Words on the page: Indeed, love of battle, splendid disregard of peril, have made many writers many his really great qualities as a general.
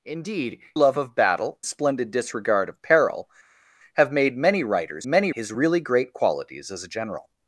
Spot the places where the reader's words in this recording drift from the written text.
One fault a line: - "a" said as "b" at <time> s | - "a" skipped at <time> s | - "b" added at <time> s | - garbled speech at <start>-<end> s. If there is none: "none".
none